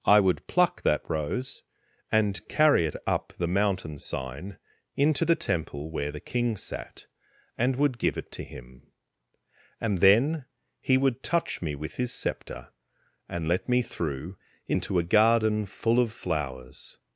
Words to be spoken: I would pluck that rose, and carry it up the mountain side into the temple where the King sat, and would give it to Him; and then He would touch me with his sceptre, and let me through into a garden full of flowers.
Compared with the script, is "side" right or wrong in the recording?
wrong